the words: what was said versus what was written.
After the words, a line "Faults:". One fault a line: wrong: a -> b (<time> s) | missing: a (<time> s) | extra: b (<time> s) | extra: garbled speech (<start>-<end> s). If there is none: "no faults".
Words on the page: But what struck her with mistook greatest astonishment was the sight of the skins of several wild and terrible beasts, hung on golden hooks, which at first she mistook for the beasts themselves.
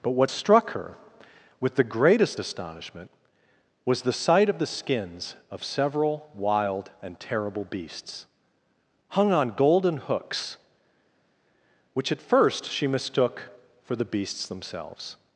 But what struck her with the greatest astonishment was the sight of the skins of several wild and terrible beasts, hung on golden hooks, which at first she mistook for the beasts themselves.
Faults:
wrong: mistook -> the (1.7 s)